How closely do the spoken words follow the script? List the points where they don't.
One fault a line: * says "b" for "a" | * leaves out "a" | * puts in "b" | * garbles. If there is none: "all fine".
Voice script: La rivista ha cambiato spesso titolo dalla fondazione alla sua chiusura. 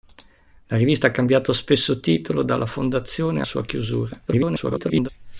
* leaves out "alla"
* garbles